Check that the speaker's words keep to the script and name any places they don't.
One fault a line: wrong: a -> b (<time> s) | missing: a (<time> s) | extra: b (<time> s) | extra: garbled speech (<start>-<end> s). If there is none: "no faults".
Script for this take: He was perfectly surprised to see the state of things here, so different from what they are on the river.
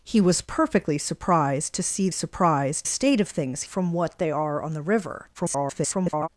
wrong: the -> surprised (2.1 s)
missing: here so different (3.6 s)
extra: garbled speech (5.3-6.3 s)